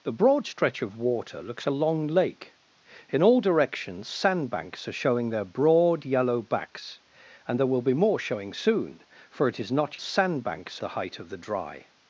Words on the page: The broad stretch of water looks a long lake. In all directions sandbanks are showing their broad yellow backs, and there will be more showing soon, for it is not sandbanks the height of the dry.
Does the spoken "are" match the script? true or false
true